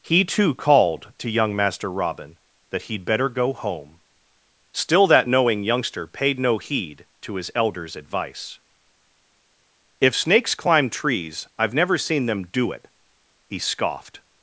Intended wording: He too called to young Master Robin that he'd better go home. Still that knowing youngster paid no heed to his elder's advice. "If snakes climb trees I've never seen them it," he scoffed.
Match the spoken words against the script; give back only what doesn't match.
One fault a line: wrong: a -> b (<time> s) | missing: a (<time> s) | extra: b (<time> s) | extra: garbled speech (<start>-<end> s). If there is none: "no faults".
extra: do (12.5 s)